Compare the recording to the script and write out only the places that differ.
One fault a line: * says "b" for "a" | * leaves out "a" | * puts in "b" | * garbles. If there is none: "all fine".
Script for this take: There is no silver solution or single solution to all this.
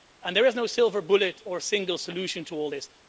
* says "bullet" for "solution"